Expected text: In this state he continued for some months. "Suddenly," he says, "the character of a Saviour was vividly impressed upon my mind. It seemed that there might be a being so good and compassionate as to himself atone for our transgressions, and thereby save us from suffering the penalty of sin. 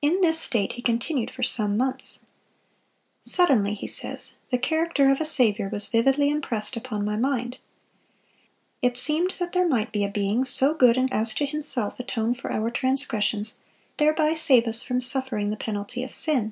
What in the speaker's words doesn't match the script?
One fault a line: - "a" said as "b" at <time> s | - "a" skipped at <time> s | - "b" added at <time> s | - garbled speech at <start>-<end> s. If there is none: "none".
- "compassionate" skipped at 11.1 s
- "and" skipped at 13.6 s